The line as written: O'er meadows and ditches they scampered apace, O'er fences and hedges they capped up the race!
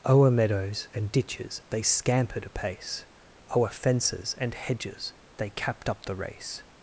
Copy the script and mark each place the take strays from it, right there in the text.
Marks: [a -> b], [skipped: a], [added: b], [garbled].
O'er meadows and ditches they scampered apace, O'er fences and hedges they capped up the race!